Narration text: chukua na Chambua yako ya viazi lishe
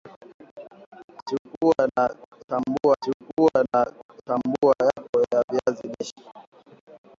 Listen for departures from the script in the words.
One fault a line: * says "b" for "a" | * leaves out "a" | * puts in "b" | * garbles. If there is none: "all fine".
* puts in "chukua na Chambua"